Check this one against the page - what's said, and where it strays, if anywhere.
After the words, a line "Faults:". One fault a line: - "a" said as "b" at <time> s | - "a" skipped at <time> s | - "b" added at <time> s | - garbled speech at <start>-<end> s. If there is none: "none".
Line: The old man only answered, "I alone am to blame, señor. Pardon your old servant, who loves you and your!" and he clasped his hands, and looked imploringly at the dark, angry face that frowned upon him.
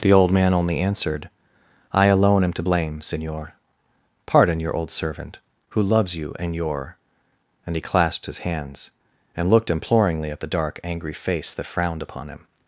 The old man only answered, "I alone am to blame, señor. Pardon your old servant, who loves you and your!" and he clasped his hands, and looked imploringly at the dark, angry face that frowned upon him.
Faults:
none